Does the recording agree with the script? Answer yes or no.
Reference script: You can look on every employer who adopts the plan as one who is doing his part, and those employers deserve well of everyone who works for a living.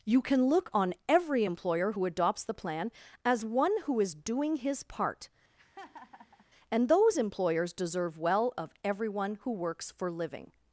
no